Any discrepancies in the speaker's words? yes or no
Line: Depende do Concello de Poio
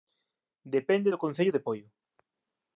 no